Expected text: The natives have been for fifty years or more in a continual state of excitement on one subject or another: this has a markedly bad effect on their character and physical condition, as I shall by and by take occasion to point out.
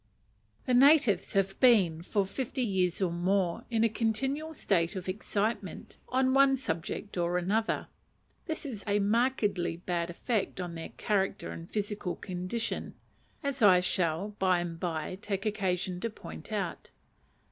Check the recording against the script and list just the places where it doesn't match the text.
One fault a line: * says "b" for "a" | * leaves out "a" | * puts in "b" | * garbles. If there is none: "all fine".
all fine